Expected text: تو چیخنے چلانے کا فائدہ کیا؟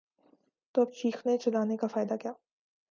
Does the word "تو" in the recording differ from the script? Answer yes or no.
no